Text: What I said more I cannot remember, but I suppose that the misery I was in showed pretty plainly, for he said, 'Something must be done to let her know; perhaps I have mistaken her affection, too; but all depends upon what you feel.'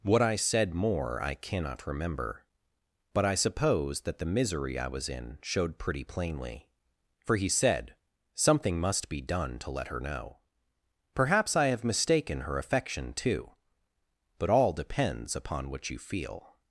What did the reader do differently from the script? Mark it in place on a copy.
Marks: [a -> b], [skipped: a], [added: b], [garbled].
What I said more I cannot remember, but I suppose that the misery I was in showed pretty plainly, for he said, 'Something must be done to let her know; perhaps I have mistaken her affection, too; but all depends upon what you feel.'